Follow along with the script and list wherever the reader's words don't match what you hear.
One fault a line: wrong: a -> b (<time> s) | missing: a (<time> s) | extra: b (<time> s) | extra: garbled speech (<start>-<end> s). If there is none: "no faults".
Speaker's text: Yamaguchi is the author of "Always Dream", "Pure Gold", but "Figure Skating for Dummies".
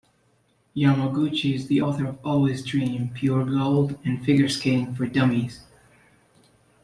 wrong: but -> and (4.0 s)